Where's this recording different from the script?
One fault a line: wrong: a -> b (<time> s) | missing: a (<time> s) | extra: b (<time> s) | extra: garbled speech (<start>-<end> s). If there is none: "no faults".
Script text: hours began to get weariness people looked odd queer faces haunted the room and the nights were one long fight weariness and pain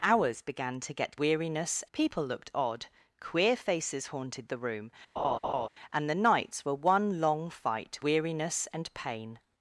no faults